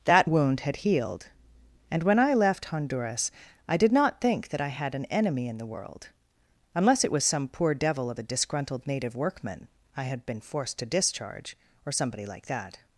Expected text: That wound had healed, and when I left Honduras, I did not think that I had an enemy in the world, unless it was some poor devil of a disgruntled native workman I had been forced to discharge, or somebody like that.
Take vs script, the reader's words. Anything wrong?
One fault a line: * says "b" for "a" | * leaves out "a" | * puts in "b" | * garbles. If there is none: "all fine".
all fine